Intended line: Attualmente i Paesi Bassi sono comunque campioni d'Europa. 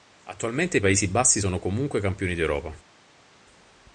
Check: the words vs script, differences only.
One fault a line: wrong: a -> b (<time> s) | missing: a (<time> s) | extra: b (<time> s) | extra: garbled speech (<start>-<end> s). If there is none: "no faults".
no faults